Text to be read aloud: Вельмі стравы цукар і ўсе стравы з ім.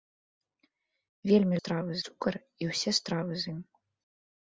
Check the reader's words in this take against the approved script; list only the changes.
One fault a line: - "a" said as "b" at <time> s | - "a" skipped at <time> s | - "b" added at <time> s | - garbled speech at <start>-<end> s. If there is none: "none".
none